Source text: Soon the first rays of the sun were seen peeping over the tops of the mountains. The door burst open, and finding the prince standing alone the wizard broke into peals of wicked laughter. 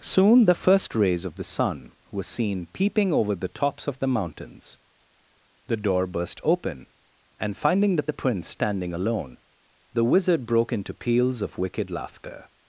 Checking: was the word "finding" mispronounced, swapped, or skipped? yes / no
no